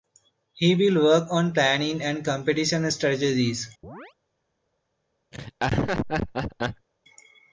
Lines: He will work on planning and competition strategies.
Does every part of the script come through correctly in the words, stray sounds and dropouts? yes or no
no